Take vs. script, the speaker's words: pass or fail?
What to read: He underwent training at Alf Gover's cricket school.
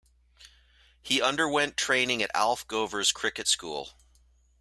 pass